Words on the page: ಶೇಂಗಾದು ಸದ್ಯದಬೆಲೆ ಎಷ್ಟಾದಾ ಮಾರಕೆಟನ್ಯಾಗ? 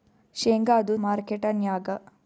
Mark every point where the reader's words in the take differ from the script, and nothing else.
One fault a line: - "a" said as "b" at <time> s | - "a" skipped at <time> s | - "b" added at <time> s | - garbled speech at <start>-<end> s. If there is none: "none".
- "ಸದ್ಯದಬೆಲೆ ಎಷ್ಟಾದಾ" skipped at 1.0 s